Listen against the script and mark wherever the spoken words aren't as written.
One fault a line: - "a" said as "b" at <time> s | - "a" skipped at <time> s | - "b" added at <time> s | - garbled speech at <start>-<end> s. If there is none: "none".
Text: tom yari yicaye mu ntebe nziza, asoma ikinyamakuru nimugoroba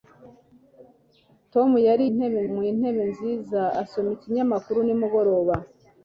- "yicaye" said as "ntebe" at 2.1 s